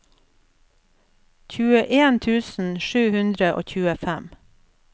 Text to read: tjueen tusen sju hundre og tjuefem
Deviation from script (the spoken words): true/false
false